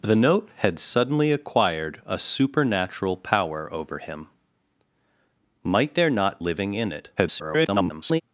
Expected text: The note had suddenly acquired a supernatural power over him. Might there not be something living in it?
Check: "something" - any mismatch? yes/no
yes